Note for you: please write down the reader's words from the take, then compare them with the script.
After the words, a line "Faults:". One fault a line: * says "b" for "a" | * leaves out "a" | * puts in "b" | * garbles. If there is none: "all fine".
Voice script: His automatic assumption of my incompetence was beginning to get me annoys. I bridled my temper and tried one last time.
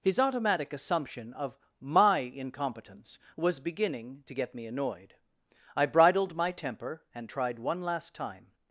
His automatic assumption of my incompetence was beginning to get me annoyed. I bridled my temper and tried one last time.
Faults:
* says "annoyed" for "annoys"